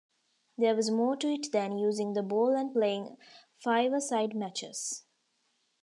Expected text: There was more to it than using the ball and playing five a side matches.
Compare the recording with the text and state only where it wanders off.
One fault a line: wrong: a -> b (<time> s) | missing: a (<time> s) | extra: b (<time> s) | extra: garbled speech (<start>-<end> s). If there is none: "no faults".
no faults